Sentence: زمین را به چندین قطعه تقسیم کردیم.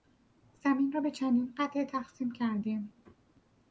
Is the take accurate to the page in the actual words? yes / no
yes